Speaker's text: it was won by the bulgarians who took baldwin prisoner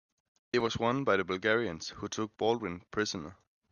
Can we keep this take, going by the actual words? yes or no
yes